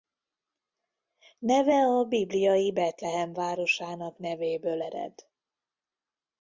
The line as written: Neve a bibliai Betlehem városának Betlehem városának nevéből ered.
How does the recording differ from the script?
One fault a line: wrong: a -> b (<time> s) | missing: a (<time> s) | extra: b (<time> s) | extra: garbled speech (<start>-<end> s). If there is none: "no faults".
missing: Betlehem városának (4.2 s)